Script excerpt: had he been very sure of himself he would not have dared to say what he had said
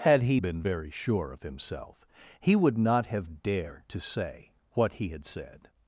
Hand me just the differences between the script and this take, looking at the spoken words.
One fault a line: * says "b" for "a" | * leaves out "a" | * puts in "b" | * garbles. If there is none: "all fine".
all fine